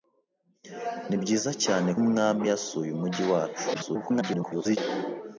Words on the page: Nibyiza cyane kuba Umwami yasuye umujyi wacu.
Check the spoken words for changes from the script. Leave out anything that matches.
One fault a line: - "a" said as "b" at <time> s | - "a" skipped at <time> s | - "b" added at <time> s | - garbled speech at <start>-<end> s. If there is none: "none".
- "kuba" skipped at 1.9 s
- garbled speech at 3.7-4.8 s